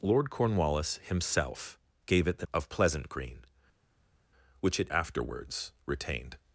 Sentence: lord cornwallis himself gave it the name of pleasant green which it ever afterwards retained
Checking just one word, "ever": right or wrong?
wrong